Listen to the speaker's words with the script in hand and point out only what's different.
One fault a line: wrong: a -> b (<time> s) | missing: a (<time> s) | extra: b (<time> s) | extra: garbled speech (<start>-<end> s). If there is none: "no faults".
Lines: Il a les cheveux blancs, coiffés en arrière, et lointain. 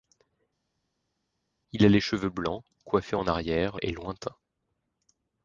no faults